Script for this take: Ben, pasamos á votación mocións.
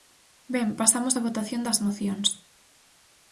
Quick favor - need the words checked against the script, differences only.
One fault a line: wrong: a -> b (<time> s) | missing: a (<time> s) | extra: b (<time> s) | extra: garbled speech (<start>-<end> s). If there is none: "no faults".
extra: das (1.7 s)